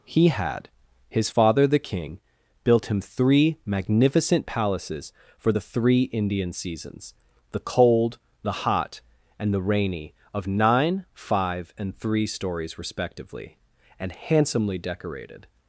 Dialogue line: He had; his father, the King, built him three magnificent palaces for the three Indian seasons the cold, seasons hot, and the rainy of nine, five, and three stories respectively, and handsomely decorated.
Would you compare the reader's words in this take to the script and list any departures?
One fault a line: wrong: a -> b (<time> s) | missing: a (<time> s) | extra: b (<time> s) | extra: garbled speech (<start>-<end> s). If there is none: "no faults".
wrong: seasons -> the (8.4 s)